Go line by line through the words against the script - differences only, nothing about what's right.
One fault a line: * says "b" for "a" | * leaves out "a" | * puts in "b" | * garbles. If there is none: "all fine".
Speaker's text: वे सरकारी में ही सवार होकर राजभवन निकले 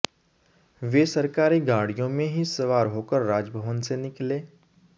* puts in "गाड़ियों"
* puts in "से"